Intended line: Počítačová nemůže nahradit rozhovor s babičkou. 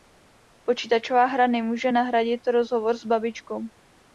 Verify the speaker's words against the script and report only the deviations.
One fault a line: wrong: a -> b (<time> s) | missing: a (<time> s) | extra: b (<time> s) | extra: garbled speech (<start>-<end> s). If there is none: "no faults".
extra: hra (1.2 s)